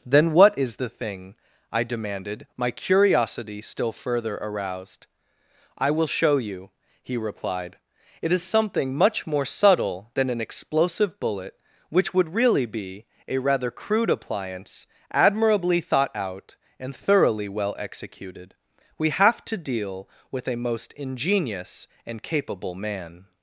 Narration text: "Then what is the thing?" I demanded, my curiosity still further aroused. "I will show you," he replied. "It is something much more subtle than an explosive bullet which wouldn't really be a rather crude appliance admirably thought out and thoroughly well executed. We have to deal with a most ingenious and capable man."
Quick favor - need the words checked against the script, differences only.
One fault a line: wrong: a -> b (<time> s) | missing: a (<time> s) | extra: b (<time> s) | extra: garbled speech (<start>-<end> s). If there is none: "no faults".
wrong: wouldn't -> would (12.1 s)